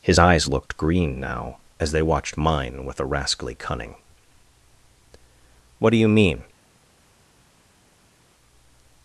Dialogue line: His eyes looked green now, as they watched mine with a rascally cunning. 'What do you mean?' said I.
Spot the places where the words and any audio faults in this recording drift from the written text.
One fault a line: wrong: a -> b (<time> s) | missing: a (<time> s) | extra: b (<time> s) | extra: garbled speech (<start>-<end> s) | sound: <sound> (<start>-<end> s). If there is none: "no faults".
missing: said I (6.4 s)